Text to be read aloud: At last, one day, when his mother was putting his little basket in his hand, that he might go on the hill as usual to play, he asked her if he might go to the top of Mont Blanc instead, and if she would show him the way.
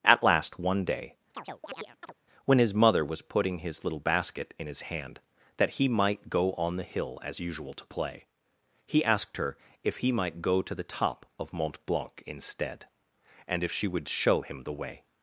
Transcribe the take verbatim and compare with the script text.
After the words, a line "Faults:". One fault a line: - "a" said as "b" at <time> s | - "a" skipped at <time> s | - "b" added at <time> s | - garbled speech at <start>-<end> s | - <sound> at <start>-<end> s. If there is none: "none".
At last, one day, when his mother was putting his little basket in his hand, that he might go on the hill as usual to play, he asked her if he might go to the top of Mont Blanc instead, and if she would show him the way.
Faults:
- chirp at 1.3-2.1 s